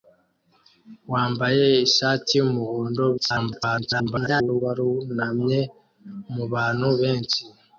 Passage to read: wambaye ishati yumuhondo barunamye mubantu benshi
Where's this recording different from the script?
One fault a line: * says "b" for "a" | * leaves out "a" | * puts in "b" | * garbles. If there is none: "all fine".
* garbles